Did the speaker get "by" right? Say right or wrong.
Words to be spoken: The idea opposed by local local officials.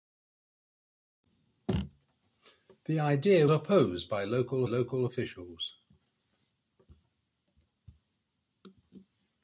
right